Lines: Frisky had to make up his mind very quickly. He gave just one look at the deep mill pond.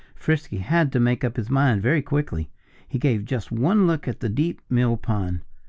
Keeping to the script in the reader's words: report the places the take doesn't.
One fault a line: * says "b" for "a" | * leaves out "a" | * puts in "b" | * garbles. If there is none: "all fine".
all fine